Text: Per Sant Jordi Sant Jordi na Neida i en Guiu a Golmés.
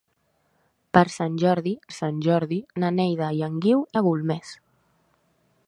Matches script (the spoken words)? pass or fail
pass